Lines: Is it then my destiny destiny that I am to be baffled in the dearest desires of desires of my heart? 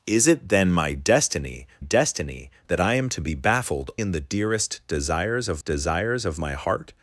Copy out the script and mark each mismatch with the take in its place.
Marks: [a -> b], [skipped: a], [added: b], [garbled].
Is it then my destiny destiny that I am to be baffled in the dearest desires of desires of my heart?